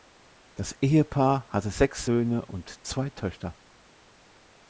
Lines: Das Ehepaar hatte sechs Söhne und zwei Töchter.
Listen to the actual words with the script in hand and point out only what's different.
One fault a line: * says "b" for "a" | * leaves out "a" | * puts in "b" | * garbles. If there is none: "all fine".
all fine